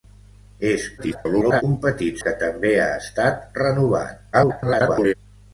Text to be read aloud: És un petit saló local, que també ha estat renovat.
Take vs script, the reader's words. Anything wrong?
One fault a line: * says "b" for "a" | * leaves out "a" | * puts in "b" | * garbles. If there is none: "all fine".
* garbles
* leaves out "saló local"
* garbles